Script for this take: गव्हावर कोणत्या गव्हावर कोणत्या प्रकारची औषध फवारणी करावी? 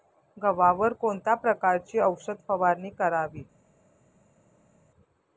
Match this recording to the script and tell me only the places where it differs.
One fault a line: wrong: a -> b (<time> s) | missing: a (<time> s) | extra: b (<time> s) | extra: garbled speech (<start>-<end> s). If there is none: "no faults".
missing: गव्हावर कोणत्या (1.3 s)